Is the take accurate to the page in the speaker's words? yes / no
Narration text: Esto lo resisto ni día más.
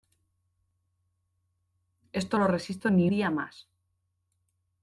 yes